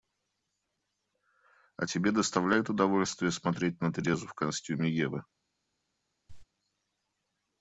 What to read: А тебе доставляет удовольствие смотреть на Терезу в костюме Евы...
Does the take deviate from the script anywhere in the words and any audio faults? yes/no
yes